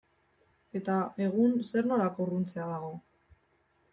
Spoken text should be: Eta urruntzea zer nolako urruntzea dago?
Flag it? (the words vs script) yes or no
yes